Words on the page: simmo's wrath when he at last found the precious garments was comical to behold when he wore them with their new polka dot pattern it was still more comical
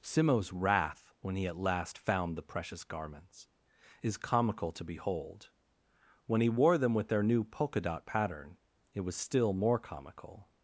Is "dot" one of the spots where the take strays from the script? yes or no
no